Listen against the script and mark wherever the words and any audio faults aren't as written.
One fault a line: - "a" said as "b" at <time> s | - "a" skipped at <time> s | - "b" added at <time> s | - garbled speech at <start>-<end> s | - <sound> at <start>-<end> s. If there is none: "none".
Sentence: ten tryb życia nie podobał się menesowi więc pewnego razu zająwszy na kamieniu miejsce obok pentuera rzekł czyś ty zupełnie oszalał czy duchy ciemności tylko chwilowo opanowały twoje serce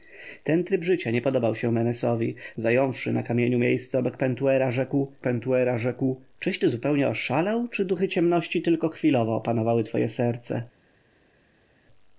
- "więc pewnego razu" skipped at 2.4 s
- "pentuera rzekł" added at 5.2 s